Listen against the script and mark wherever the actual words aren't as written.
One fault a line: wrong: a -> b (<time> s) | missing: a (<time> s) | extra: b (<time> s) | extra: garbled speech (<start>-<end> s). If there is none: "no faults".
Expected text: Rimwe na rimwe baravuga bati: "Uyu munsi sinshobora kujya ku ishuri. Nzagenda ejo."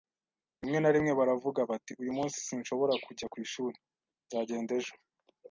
no faults